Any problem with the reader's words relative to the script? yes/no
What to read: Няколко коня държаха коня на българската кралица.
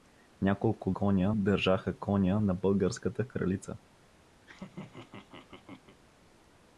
no